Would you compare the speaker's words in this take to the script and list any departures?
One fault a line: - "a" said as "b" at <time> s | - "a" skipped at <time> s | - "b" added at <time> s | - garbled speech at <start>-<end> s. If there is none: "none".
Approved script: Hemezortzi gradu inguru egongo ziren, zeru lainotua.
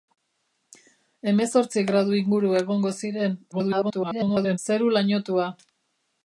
- garbled speech at 3.5-4.6 s